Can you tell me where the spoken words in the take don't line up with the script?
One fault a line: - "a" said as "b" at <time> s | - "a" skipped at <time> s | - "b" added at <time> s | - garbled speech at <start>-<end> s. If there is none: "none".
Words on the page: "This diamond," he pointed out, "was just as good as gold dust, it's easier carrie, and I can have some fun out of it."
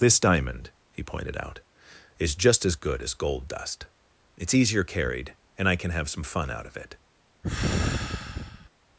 - "was" said as "is" at 2.2 s
- "carrie" said as "carried" at 4.8 s